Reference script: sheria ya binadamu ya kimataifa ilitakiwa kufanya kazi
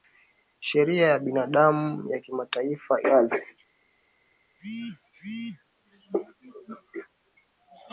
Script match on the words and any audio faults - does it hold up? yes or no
no